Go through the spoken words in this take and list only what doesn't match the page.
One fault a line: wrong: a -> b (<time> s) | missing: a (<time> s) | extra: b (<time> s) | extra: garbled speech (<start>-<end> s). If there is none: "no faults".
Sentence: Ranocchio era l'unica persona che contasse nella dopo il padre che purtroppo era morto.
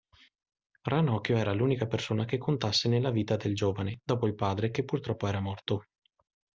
extra: vita del giovane (3.1 s)